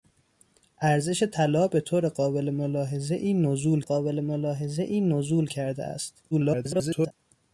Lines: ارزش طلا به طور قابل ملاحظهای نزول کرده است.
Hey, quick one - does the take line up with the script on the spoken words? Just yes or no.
no